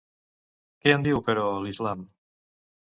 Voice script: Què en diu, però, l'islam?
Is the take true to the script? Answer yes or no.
yes